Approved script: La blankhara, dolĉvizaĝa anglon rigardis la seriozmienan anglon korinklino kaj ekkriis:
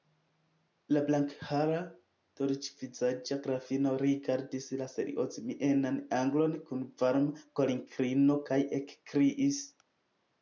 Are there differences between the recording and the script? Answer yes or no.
yes